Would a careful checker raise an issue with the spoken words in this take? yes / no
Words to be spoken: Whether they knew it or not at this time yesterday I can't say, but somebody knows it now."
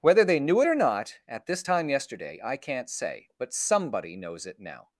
no